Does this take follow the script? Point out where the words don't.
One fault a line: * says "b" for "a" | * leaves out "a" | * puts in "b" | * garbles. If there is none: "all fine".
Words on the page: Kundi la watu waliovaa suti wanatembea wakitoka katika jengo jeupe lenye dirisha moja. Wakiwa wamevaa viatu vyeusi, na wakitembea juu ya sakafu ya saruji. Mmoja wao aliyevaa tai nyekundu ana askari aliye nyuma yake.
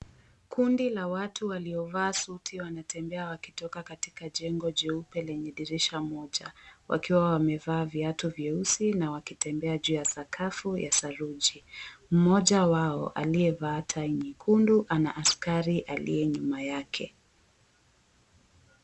all fine